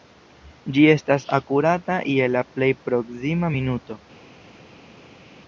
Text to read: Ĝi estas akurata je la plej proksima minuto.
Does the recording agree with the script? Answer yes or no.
yes